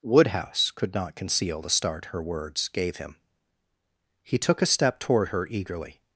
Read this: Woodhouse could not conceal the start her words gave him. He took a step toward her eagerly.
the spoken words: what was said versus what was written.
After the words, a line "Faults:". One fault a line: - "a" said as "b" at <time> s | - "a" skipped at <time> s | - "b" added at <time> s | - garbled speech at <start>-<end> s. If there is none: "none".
Woodhouse could not conceal the start her words gave him. He took a step toward her eagerly.
Faults:
none